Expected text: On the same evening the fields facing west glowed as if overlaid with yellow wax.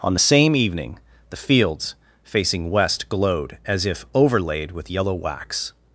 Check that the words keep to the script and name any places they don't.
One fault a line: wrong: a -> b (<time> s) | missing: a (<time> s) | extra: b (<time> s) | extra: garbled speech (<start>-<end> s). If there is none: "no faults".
no faults